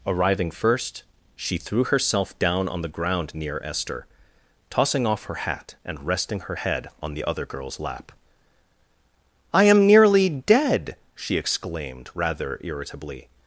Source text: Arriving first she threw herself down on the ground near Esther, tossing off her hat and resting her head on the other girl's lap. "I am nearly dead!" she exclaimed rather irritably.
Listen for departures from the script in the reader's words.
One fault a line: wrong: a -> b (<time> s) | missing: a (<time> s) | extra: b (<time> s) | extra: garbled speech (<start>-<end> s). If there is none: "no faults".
no faults